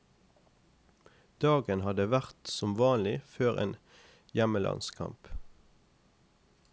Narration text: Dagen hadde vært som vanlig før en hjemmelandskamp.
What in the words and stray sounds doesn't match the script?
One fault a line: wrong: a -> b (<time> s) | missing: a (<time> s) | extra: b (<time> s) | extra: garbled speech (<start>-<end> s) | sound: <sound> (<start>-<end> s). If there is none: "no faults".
no faults